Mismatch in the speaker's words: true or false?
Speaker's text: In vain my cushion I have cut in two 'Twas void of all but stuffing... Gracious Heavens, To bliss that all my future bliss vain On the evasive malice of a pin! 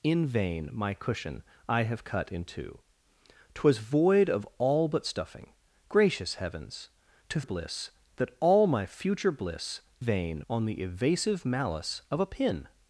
false